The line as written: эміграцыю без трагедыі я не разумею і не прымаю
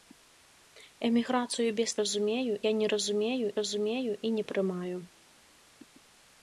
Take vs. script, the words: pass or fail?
fail